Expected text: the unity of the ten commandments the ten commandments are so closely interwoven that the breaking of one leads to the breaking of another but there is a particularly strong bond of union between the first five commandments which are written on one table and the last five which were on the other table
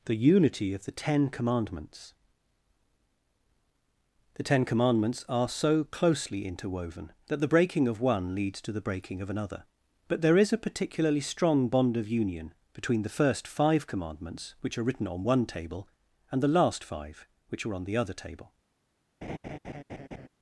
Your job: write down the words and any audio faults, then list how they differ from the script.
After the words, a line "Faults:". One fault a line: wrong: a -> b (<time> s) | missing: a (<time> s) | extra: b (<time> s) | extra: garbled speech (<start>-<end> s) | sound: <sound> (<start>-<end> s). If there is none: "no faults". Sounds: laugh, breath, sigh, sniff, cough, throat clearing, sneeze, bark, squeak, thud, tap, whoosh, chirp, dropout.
the unity of the ten commandments the ten commandments are so closely interwoven that the breaking of one leads to the breaking of another but there is a particularly strong bond of union between the first five commandments which are written on one table and the last five which are on the other table
Faults:
wrong: were -> are (17.7 s)
sound: laugh (19.2-20.3 s)